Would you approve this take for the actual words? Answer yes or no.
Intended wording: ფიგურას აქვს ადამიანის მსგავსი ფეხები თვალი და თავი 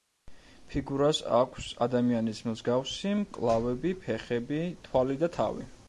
no